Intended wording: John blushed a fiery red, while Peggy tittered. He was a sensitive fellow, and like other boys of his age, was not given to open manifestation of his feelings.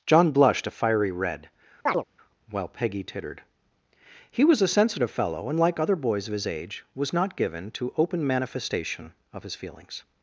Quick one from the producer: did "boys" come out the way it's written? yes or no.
yes